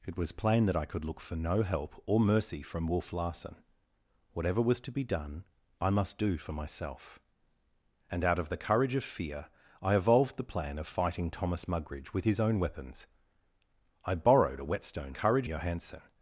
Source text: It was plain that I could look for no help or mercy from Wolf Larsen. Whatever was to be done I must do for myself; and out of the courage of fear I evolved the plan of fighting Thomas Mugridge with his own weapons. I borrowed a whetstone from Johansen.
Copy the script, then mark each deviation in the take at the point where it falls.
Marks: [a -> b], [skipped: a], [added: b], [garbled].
It was plain that I could look for no help or mercy from Wolf Larsen. Whatever was to be done I must do for myself; and out of the courage of fear I evolved the plan of fighting Thomas Mugridge with his own weapons. I borrowed a whetstone [from -> courage] Johansen.